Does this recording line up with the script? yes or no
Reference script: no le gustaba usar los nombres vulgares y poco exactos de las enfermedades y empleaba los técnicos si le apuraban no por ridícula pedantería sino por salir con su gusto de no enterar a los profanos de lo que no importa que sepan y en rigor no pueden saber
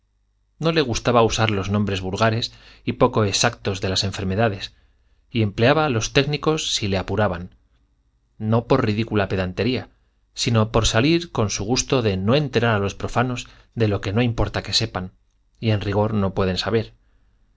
yes